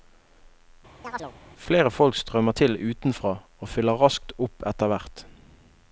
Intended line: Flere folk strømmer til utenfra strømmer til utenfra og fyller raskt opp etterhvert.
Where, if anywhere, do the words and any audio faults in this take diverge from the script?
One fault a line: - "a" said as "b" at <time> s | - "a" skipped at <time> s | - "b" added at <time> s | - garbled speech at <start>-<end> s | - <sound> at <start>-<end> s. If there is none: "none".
- chirp at 1.0-1.4 s
- "strømmer til utenfra" skipped at 3.3 s